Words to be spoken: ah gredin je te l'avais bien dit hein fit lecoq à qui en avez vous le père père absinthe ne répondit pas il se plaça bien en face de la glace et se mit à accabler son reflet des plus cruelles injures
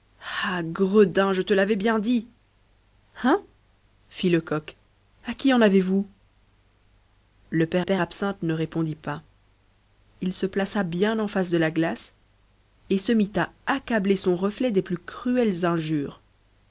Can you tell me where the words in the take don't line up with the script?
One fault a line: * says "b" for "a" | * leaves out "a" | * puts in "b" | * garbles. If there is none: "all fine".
all fine